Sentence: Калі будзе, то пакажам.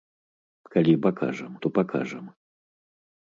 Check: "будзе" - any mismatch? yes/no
yes